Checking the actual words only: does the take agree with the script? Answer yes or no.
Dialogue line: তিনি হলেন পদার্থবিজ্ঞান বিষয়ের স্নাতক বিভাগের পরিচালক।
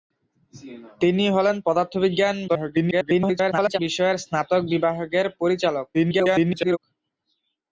no